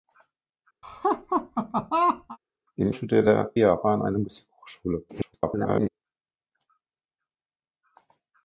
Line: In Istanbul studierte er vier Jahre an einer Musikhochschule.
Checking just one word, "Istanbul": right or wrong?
wrong